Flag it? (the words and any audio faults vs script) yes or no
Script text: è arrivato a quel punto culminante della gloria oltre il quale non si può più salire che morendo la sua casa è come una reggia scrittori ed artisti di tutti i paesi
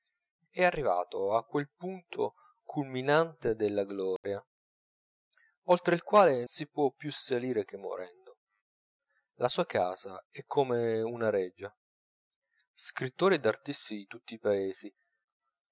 yes